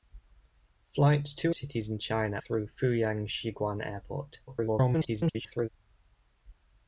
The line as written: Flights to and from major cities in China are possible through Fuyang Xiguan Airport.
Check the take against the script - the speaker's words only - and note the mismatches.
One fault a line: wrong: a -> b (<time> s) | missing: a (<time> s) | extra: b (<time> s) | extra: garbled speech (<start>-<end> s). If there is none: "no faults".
missing: and from major (1.5 s)
missing: are possible (2.4 s)
extra: garbled speech (4.5-5.7 s)